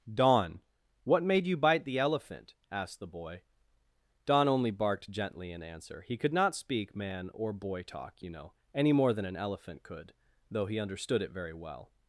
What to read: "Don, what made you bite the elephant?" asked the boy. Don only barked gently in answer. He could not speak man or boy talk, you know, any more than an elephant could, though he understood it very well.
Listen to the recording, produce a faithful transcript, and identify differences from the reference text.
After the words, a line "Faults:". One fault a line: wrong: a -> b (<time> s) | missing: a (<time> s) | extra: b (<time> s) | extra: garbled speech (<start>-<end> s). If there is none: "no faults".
"Don, what made you bite the elephant?" asked the boy. Don only barked gently in answer. He could not speak man or boy talk, you know, any more than an elephant could, though he understood it very well.
Faults:
no faults